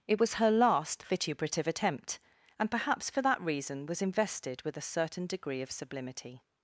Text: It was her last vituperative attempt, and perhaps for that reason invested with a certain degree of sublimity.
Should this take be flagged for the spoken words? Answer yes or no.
yes